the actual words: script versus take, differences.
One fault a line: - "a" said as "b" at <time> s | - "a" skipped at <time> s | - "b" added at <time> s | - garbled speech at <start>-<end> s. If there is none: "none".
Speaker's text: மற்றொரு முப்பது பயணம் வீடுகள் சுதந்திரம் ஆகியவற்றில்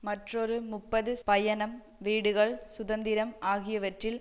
none